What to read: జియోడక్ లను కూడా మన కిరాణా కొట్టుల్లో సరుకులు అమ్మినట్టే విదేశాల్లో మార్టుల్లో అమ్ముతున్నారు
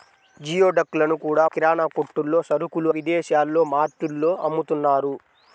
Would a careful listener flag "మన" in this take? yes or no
yes